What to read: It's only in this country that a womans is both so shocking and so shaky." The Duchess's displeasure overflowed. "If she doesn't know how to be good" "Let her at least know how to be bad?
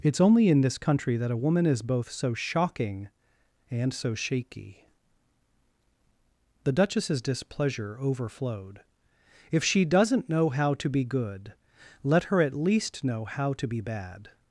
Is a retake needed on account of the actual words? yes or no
yes